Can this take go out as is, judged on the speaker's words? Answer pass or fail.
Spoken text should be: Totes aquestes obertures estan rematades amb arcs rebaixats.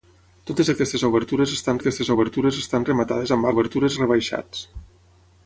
fail